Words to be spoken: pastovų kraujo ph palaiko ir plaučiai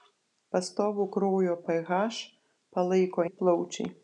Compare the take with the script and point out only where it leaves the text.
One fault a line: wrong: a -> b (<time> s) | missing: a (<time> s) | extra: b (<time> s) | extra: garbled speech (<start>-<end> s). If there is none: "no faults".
no faults